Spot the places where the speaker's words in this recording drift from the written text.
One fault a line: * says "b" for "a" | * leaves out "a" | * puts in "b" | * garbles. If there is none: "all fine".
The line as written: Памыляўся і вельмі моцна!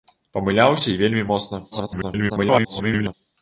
* garbles